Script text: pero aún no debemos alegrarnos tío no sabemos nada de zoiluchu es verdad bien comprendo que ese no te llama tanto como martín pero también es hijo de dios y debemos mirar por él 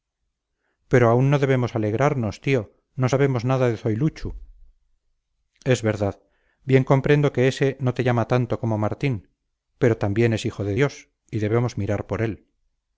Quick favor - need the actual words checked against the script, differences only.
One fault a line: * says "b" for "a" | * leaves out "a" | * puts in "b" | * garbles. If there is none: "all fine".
all fine